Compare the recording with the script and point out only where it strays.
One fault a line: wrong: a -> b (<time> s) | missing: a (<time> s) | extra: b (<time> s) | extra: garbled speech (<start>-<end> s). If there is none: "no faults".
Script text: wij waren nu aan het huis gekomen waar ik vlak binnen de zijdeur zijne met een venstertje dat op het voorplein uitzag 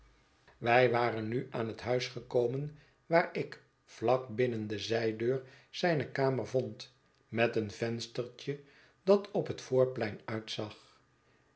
extra: kamer vond (6.1 s)